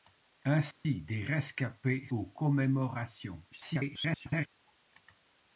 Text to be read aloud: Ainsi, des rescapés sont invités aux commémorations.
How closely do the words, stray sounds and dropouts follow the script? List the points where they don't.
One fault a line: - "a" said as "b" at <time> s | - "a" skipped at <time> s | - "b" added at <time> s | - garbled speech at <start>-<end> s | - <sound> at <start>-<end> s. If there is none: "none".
- dropout at 0.7-0.8 s
- "sont invités" skipped at 2.1 s
- garbled speech at 3.5-4.5 s